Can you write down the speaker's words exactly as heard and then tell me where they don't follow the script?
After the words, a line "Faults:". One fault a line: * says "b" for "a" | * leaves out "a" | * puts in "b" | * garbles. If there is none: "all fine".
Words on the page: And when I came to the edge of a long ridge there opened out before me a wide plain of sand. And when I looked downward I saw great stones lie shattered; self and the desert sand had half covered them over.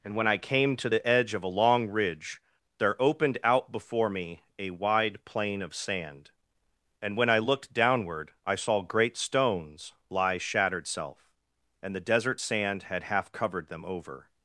And when I came to the edge of a long ridge there opened out before me a wide plain of sand. And when I looked downward I saw great stones lie shattered; self and the desert sand had half covered them over.
Faults:
all fine